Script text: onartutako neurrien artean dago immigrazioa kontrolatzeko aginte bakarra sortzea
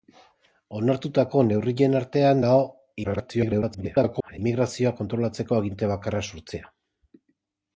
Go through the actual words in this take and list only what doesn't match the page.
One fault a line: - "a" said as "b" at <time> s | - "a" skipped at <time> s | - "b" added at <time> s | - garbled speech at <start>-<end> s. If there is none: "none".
- garbled speech at 3.0-4.4 s